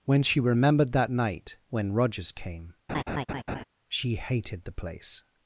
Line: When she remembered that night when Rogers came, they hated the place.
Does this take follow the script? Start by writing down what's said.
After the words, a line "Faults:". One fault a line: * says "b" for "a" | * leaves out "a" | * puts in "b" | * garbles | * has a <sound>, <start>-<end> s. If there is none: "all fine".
When she remembered that night when Rogers came, she hated the place.
Faults:
* has a laugh, 2.9-3.6 s
* says "she" for "they"